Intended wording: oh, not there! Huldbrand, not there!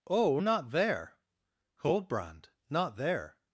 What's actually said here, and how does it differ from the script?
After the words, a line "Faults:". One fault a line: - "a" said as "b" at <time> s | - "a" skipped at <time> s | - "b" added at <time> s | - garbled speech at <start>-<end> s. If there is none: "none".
oh, not there! Huldbrand, not there!
Faults:
none